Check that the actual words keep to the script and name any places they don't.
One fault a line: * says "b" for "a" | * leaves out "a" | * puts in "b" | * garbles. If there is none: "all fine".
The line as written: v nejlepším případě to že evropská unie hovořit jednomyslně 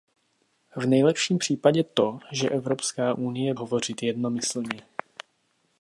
all fine